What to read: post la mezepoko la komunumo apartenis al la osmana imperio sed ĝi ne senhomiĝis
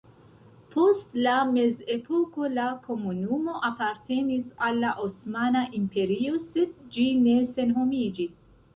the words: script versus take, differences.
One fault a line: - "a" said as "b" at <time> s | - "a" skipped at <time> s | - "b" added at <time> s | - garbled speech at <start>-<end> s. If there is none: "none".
none